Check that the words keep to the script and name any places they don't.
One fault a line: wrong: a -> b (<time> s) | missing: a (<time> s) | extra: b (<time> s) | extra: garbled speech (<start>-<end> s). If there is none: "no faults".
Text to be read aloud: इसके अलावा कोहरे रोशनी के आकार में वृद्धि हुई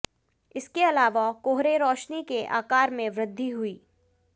no faults